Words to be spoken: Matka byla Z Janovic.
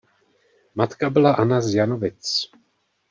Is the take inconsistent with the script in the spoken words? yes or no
yes